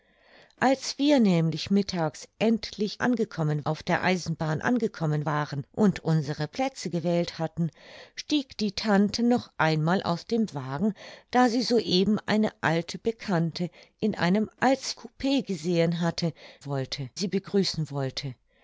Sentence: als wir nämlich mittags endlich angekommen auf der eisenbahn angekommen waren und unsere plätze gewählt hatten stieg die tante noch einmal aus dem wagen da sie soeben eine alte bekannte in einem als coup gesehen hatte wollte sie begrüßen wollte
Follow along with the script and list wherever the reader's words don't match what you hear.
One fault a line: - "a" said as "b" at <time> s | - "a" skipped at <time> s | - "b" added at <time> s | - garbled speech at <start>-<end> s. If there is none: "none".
none